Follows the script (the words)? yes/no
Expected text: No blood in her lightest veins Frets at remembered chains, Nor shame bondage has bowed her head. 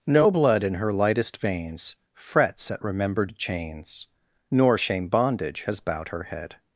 yes